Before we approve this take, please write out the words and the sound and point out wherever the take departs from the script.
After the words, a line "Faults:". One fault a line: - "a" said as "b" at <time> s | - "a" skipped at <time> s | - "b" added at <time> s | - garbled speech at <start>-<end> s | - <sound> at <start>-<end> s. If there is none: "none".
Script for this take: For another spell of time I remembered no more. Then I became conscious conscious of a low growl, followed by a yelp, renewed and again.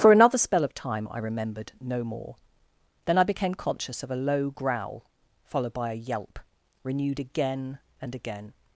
For another spell of time I remembered no more. Then I became conscious of a low growl, followed by a yelp, renewed again and again.
Faults:
- "conscious" skipped at 4.0 s
- "again" added at 7.2 s